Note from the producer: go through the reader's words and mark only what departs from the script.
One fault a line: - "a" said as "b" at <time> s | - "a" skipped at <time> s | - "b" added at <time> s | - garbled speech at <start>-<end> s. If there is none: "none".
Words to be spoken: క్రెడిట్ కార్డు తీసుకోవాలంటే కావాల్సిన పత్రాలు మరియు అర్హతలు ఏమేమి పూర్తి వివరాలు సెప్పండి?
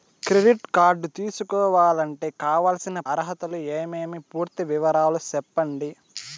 - "పత్రాలు మరియు" skipped at 3.0 s